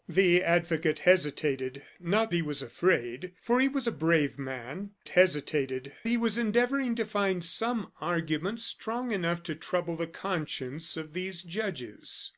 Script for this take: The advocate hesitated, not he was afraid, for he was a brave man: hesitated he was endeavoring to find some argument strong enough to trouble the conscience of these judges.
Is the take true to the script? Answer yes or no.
yes